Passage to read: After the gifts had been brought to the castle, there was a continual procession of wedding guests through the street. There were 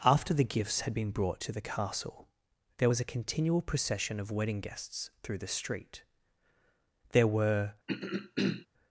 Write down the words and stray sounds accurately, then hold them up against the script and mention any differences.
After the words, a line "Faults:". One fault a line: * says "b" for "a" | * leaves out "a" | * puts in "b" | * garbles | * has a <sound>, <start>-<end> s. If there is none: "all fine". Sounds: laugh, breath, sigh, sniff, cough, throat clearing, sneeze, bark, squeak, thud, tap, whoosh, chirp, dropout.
After the gifts had been brought to the castle, there was a continual procession of wedding guests through the street. There were
Faults:
* has a throat clearing, 7.9-8.7 s